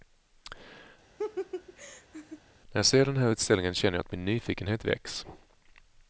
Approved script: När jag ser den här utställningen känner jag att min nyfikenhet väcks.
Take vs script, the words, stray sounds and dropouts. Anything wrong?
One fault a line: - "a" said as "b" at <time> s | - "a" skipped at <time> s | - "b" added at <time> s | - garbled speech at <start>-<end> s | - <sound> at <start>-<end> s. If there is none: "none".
- laugh at 1.2-2.4 s